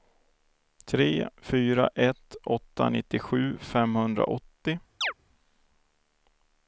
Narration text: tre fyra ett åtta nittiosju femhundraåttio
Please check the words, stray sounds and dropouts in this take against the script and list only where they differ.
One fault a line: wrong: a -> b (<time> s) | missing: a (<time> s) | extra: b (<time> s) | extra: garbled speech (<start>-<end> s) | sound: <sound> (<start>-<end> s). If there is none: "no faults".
sound: chirp (5.0-5.1 s)